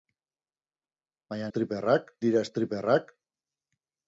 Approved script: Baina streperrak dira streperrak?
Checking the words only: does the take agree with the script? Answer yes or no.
yes